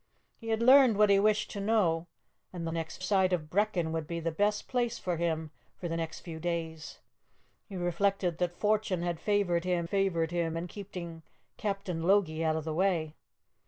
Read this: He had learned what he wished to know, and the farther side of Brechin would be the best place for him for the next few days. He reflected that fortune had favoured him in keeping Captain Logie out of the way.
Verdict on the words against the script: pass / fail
fail